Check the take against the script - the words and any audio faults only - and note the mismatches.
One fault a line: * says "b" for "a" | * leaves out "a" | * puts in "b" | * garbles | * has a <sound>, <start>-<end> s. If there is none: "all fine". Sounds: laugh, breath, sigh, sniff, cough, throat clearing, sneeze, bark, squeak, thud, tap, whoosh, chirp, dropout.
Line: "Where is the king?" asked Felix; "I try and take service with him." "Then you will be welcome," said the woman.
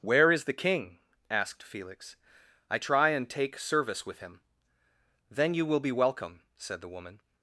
all fine